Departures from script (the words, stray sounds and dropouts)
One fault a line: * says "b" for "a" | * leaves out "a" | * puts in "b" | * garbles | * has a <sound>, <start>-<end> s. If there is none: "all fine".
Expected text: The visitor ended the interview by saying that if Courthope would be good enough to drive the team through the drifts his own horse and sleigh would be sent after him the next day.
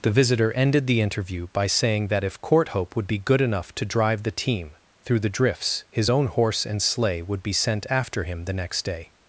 all fine